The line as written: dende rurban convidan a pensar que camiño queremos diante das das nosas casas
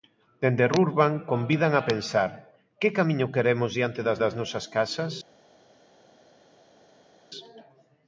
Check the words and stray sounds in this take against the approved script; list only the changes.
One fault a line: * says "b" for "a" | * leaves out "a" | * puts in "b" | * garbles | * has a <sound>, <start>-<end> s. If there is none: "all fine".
all fine